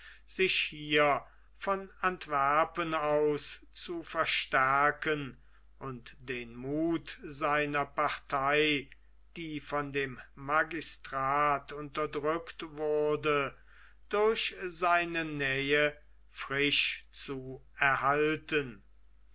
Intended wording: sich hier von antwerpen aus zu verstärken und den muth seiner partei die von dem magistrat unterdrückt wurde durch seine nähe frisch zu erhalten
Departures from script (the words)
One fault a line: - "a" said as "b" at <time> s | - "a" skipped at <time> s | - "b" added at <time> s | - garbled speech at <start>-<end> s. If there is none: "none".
none